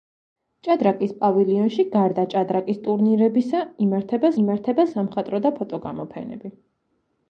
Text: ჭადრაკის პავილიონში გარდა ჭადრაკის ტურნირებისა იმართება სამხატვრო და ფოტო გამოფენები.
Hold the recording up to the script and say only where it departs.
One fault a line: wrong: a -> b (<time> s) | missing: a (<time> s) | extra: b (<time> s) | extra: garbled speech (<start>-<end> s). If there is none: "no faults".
extra: იმართება (4.4 s)